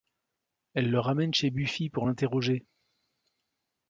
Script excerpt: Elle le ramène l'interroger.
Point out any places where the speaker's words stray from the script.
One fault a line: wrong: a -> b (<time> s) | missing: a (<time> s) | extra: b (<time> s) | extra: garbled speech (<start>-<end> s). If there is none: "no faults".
extra: chez Buffy pour (1.3 s)